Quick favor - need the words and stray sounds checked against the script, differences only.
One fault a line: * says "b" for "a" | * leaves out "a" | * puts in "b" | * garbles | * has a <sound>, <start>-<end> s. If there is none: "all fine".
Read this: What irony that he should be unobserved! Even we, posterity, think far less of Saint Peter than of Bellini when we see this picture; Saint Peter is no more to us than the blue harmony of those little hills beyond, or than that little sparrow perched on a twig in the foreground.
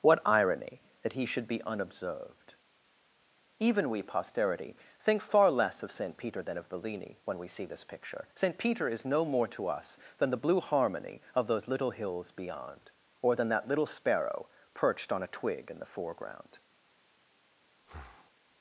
* has a breath, 17.8-18.3 s